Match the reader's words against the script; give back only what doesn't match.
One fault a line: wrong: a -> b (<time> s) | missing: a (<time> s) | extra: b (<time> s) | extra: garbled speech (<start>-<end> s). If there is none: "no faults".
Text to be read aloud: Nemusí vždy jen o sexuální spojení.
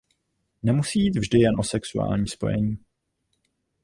extra: jít (1.0 s)